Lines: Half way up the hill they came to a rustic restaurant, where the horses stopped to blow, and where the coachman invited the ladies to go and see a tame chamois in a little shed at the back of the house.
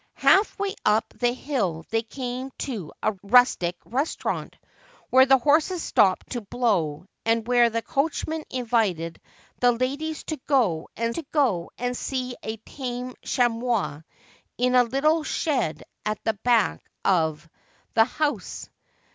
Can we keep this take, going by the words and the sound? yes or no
no